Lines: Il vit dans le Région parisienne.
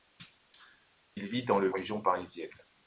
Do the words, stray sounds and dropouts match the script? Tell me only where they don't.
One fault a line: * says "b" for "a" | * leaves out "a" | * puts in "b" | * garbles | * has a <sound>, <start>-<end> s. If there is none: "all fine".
all fine